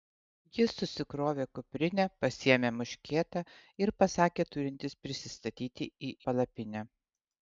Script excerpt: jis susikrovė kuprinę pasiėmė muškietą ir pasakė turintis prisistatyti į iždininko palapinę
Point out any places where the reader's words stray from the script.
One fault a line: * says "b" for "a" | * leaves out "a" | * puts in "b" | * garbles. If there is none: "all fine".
* leaves out "iždininko"